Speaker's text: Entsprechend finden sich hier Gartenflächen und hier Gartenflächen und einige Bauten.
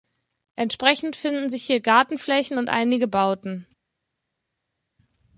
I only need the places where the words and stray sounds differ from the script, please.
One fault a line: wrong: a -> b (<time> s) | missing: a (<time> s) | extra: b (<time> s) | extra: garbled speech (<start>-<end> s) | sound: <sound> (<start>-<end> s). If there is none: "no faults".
missing: hier Gartenflächen und (2.7 s)